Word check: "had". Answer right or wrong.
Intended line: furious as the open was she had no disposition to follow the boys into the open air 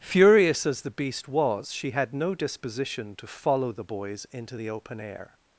right